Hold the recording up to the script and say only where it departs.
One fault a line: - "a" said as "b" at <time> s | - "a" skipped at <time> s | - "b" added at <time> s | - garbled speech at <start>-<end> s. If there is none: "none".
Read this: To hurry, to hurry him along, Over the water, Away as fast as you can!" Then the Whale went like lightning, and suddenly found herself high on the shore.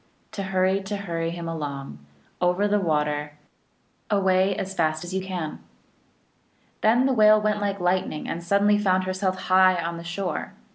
none